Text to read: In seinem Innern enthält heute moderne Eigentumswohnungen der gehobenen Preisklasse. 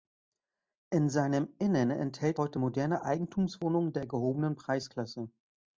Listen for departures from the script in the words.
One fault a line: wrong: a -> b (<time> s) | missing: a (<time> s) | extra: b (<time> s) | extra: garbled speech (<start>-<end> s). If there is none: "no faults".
no faults